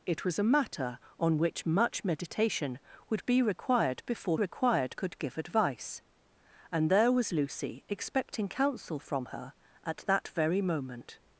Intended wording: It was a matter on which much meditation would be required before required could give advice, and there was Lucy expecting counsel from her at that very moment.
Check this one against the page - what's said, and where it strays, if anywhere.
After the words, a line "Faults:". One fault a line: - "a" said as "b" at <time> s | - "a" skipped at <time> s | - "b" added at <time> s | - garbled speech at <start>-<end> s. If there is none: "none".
It was a matter on which much meditation would be required before required could give advice, and there was Lucy expecting counsel from her at that very moment.
Faults:
none